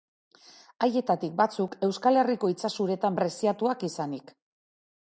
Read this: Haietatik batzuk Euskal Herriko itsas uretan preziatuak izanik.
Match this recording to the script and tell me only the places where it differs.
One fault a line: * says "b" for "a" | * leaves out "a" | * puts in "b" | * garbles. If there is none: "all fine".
all fine